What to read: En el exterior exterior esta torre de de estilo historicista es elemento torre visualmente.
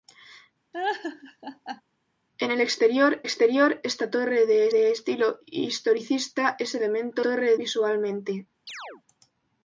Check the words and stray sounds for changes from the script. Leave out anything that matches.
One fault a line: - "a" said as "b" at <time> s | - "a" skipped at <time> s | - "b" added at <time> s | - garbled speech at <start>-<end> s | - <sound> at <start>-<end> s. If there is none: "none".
- laugh at 0.7-1.8 s
- chirp at 8.7-9.0 s